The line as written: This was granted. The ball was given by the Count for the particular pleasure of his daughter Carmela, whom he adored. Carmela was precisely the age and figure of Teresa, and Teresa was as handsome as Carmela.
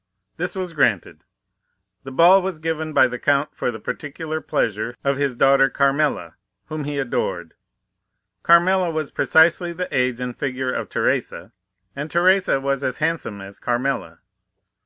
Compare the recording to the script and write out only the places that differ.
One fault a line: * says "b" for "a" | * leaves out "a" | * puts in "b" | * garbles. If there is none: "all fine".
all fine